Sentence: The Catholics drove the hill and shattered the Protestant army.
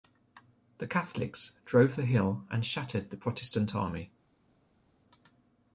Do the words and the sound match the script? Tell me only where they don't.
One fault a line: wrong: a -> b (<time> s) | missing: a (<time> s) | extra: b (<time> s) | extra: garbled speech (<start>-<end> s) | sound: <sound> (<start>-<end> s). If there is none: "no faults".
no faults